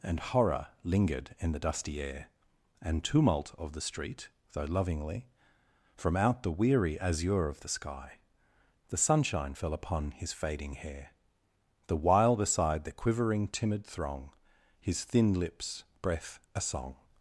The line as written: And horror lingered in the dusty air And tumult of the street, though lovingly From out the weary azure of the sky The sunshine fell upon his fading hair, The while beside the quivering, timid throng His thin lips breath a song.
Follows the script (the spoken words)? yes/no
yes